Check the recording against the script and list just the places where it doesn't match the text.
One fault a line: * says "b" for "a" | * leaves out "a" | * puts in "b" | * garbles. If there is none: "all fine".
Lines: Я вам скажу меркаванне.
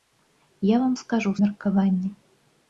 all fine